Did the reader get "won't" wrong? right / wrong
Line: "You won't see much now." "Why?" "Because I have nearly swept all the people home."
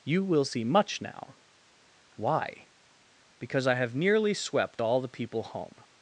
wrong